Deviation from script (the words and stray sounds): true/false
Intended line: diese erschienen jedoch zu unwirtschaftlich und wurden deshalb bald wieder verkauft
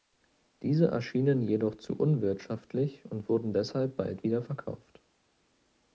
false